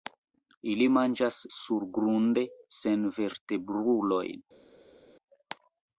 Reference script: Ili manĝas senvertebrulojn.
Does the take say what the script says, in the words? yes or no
no